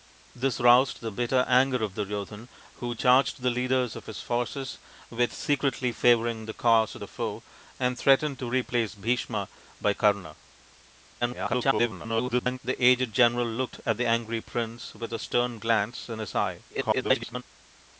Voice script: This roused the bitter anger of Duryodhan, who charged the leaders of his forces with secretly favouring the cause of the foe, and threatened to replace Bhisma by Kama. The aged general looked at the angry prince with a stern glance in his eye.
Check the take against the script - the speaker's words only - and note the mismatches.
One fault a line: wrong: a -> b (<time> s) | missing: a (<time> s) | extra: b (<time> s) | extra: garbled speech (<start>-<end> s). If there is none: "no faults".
extra: garbled speech (11.2-12.6 s)
extra: garbled speech (16.7-17.4 s)